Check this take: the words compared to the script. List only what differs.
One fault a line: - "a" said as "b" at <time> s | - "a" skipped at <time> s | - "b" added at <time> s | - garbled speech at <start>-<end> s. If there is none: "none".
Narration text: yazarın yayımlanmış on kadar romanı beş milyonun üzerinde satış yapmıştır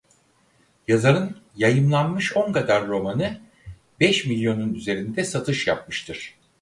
none